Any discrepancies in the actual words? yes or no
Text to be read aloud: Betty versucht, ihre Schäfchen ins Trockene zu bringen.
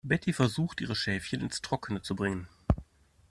no